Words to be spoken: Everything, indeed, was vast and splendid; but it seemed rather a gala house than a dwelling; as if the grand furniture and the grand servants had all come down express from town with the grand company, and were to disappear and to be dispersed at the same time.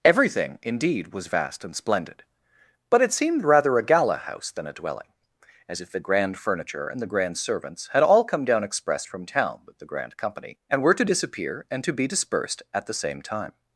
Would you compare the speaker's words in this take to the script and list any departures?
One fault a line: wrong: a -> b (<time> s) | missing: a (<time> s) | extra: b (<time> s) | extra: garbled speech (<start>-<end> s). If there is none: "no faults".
no faults